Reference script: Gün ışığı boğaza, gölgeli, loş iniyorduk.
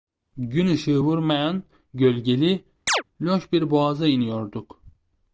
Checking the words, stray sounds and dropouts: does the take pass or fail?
fail